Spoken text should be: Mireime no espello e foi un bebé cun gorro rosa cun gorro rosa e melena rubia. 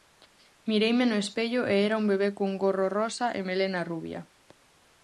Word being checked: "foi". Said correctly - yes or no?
no